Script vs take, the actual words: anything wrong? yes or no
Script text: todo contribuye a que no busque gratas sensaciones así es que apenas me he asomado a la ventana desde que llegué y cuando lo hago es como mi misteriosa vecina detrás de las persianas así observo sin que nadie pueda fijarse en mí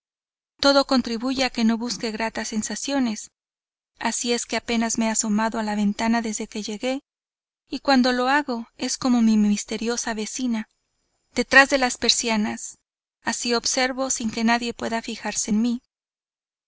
no